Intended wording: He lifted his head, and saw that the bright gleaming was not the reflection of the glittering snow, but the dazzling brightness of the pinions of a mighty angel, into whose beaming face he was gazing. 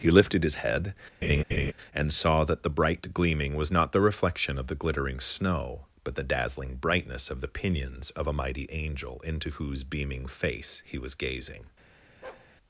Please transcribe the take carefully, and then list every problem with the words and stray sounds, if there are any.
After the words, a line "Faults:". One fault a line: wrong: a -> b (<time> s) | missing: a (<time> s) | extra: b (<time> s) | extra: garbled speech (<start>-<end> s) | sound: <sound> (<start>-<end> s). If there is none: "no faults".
He lifted his head, and saw that the bright gleaming was not the reflection of the glittering snow, but the dazzling brightness of the pinions of a mighty angel, into whose beaming face he was gazing.
Faults:
sound: laugh (1.2-1.7 s)
sound: bark (12.2-12.5 s)